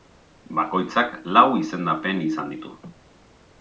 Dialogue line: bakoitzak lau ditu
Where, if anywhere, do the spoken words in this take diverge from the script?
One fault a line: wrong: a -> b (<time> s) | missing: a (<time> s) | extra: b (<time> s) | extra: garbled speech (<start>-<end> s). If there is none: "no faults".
extra: izendapen izan (1.6 s)